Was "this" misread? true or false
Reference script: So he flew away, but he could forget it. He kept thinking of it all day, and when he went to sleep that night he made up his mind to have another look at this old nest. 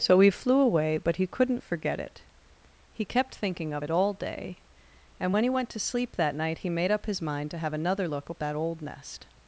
true